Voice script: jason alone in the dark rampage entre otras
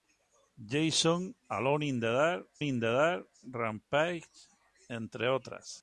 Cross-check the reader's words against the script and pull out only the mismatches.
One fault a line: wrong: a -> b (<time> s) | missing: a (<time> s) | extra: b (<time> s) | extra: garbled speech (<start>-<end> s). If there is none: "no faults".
extra: in the dark (2.6 s)